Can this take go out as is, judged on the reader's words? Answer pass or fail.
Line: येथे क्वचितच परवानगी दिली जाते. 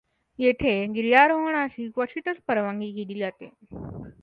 fail